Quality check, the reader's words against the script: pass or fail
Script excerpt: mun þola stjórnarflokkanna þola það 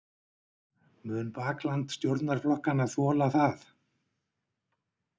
fail